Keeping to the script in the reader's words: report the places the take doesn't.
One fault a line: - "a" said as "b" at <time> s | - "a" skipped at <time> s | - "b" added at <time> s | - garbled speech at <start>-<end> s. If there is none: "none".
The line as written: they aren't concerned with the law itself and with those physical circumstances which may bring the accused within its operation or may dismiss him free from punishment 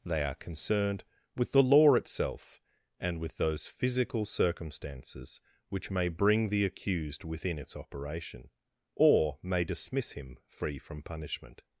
- "aren't" said as "are" at 0.2 s